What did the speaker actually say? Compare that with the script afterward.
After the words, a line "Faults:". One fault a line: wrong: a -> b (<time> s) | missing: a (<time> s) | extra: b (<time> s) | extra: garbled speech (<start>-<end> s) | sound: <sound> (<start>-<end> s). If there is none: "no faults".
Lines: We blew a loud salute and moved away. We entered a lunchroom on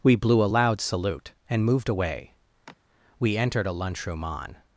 We blew a loud salute and moved away. We entered a lunchroom on
Faults:
sound: sigh (2.7-2.8 s)